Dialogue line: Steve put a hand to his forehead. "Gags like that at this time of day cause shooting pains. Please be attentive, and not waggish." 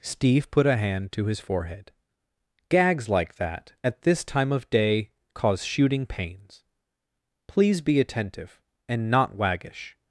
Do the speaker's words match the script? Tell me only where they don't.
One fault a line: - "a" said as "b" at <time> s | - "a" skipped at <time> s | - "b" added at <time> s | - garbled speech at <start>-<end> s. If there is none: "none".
none